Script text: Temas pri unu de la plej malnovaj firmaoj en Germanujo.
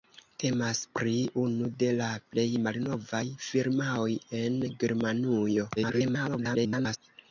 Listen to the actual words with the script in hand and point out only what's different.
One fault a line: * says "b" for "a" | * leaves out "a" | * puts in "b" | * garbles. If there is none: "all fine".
* garbles